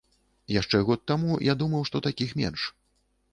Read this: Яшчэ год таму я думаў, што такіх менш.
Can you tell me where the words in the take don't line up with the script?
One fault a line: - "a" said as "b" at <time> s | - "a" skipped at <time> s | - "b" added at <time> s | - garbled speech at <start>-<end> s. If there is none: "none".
none